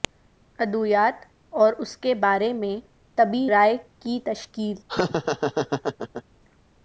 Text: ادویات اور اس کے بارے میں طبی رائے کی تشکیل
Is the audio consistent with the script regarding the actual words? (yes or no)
yes